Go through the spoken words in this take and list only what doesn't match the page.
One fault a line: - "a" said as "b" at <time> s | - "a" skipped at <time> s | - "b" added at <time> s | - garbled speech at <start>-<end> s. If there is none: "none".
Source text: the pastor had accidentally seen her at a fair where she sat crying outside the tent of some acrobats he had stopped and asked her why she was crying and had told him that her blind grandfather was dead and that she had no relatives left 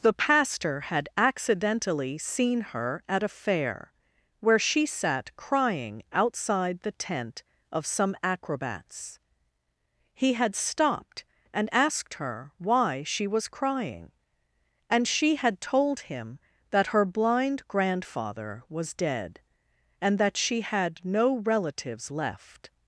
- "she" added at 15.1 s